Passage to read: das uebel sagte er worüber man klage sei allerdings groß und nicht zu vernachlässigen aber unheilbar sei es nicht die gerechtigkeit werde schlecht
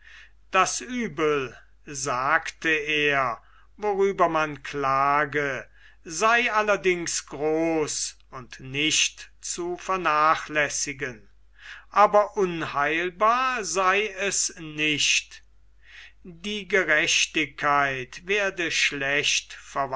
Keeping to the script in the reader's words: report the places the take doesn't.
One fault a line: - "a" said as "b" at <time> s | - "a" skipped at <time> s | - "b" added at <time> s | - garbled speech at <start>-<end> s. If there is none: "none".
none